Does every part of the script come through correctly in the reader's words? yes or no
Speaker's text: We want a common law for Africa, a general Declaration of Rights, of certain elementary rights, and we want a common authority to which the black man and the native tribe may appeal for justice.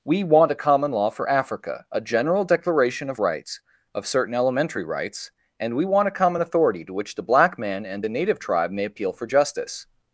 yes